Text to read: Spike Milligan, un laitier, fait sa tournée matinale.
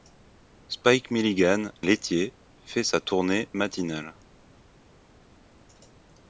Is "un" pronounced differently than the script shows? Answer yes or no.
yes